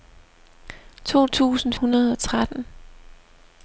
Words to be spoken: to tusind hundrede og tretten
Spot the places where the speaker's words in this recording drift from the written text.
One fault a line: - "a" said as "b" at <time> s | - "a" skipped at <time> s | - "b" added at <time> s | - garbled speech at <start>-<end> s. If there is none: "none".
none